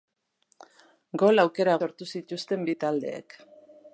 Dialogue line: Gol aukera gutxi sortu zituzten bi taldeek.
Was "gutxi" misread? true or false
true